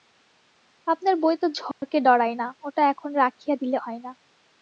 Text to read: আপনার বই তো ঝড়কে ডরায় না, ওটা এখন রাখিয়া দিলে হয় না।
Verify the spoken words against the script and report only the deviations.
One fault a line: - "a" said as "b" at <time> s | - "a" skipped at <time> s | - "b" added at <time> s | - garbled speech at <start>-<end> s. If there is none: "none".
none